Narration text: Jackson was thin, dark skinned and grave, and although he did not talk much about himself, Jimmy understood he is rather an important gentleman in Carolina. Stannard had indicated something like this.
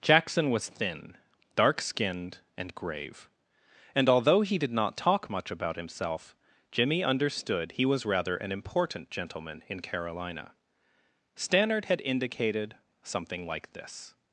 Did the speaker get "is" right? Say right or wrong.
wrong